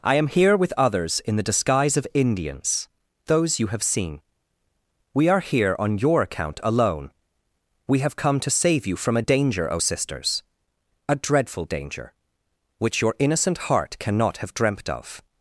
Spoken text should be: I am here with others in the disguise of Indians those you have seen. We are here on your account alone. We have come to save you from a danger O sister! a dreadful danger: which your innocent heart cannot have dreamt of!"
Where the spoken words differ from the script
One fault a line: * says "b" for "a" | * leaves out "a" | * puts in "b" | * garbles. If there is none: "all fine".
* says "sisters" for "sister"